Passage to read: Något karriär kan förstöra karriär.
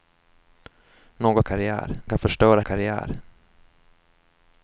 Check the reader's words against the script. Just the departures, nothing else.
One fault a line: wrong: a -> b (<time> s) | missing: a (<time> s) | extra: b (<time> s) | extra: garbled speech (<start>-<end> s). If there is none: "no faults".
no faults